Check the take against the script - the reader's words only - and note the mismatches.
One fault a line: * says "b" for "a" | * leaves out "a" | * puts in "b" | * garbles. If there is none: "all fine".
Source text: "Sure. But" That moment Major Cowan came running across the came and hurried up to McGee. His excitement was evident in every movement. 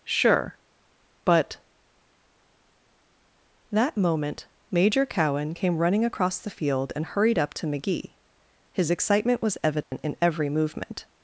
* says "field" for "came"